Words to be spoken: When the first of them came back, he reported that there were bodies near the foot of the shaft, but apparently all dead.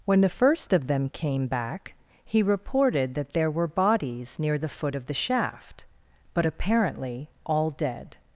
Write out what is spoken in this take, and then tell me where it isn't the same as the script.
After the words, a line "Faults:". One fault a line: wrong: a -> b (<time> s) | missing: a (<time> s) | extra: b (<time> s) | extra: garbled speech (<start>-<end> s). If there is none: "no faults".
When the first of them came back, he reported that there were bodies near the foot of the shaft, but apparently all dead.
Faults:
no faults